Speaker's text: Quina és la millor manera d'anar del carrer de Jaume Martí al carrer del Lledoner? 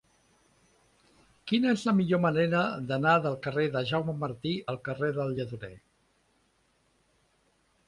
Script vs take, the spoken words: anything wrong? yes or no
no